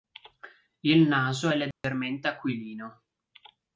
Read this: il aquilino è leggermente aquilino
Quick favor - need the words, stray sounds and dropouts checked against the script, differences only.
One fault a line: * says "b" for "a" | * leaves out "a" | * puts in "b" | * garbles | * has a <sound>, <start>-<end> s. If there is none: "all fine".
* says "naso" for "aquilino"
* has a dropout, 1.7-1.8 s